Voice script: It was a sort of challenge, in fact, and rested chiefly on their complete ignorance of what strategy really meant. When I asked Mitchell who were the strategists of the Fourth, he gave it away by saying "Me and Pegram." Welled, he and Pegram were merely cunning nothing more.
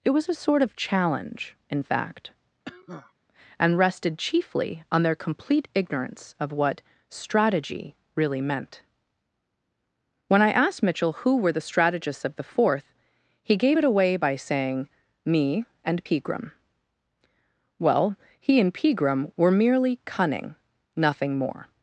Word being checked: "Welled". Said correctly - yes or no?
no